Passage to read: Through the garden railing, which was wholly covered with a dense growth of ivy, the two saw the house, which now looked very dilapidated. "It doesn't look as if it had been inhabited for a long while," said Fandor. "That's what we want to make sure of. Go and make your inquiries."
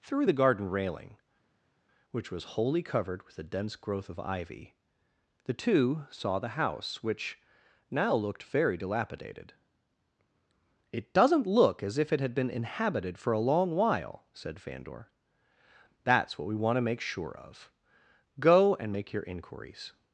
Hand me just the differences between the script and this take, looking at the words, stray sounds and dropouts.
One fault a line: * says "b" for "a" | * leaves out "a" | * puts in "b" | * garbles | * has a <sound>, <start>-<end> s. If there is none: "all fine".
all fine